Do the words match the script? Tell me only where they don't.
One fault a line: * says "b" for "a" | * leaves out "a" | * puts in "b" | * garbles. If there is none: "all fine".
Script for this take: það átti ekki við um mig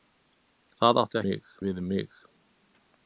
* says "mig" for "ekki"